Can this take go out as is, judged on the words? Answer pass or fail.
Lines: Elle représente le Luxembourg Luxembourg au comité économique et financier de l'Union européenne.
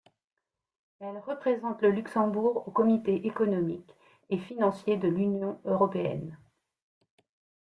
fail